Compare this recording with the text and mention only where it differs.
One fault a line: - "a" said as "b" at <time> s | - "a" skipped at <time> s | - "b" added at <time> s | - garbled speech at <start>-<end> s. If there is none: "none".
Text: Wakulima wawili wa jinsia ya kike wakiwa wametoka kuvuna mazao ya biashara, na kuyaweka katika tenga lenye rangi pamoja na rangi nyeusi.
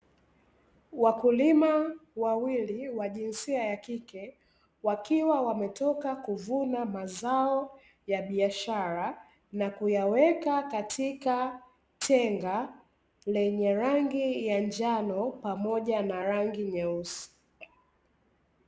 - "ya njano" added at 14.5 s